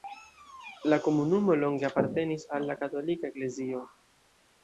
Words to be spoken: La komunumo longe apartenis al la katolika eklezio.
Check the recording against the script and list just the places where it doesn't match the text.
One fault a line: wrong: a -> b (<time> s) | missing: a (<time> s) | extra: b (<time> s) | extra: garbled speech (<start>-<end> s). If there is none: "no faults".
no faults